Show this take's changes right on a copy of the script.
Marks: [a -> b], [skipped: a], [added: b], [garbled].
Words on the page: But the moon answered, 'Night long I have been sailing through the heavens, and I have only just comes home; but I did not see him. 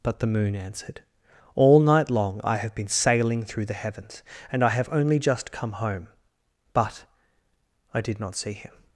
But the moon answered, [added: All] 'Night long I have been sailing through the heavens, and I have only just [comes -> come] home; but I did not see him.